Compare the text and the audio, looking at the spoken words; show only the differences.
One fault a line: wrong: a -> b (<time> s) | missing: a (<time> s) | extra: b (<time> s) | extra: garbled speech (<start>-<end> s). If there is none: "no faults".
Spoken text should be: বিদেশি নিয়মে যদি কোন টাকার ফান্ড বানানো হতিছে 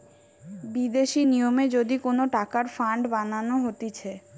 no faults